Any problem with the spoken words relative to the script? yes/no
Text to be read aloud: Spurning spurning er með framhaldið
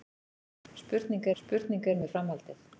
no